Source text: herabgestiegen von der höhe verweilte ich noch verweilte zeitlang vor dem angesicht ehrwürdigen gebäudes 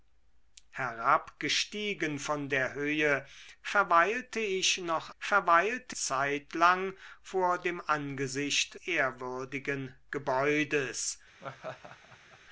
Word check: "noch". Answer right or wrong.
right